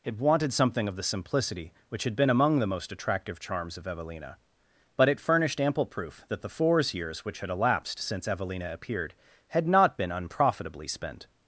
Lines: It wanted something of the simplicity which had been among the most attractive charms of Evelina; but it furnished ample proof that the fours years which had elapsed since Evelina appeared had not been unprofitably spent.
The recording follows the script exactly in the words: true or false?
true